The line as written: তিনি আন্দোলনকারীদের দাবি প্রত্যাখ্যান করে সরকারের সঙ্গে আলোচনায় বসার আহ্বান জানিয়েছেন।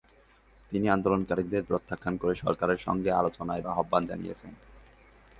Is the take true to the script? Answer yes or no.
no